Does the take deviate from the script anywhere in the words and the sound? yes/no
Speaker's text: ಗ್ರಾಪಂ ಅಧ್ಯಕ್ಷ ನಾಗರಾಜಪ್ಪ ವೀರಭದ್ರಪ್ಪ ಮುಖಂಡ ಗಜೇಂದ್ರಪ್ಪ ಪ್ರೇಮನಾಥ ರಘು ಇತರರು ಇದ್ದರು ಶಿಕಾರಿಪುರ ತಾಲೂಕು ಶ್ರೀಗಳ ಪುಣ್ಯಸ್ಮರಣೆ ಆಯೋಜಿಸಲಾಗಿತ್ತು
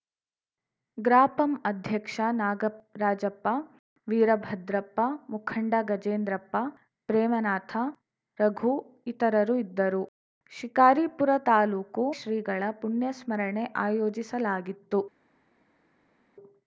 no